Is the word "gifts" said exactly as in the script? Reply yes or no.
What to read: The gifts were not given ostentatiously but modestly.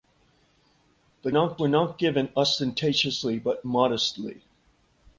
no